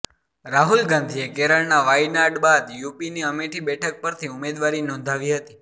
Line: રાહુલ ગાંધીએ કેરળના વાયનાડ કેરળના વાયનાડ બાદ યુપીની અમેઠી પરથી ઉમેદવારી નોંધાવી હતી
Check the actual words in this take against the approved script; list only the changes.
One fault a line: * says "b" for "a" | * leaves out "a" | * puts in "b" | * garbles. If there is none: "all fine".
* leaves out "કેરળના વાયનાડ"
* puts in "બેઠક"